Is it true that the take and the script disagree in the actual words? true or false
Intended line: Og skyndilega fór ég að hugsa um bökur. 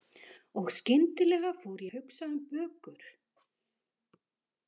true